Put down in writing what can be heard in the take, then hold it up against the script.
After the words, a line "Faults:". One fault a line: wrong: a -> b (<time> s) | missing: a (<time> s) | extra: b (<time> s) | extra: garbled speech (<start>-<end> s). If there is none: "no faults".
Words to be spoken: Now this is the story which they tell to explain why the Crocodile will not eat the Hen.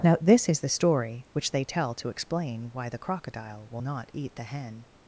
Now this is the story which they tell to explain why the Crocodile will not eat the Hen.
Faults:
no faults